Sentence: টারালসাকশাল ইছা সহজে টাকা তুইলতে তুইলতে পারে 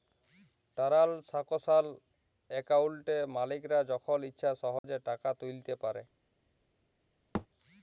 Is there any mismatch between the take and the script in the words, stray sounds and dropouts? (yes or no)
yes